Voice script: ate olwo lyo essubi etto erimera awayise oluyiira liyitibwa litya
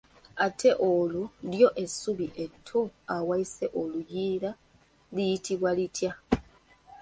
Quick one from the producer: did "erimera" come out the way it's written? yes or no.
no